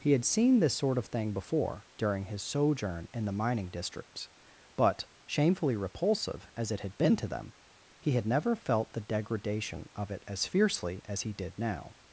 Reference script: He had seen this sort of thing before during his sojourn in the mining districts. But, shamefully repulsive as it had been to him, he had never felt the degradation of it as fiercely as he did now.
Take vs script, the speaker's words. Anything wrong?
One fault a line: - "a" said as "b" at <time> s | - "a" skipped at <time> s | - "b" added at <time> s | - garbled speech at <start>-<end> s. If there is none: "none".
- "him" said as "them" at 7.3 s